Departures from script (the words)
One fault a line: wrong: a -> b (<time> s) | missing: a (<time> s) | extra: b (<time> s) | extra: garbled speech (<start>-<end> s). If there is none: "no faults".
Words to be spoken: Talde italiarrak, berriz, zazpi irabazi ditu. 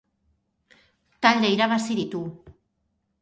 missing: italiarrak berriz zazpi (1.5 s)